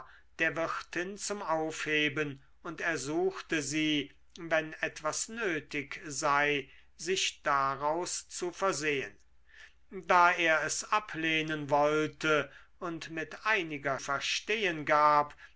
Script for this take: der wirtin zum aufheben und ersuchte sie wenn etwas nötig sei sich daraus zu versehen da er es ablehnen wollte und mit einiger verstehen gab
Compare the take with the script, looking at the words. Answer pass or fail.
pass